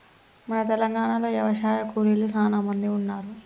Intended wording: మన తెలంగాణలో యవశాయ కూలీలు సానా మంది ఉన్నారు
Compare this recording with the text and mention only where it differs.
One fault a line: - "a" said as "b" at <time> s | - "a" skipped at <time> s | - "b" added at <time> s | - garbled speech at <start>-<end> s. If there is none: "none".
none